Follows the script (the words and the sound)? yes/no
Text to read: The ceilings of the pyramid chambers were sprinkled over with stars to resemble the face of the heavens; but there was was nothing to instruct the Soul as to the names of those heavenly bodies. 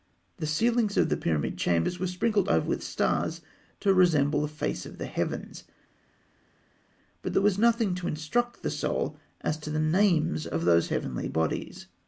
no